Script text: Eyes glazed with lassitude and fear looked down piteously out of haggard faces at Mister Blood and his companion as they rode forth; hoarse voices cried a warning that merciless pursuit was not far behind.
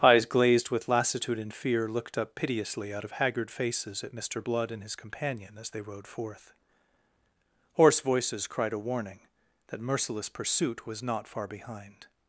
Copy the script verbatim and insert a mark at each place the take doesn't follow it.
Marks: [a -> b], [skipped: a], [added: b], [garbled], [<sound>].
Eyes glazed with lassitude and fear looked [down -> up] piteously out of haggard faces at Mister Blood and his companion as they rode forth; hoarse voices cried a warning that merciless pursuit was not far behind.